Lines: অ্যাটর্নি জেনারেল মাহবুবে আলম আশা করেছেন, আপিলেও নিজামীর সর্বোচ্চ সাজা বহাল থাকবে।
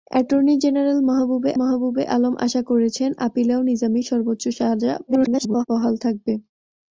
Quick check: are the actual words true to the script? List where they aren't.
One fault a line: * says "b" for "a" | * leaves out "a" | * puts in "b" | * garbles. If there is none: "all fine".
* puts in "মাহবুবে"
* garbles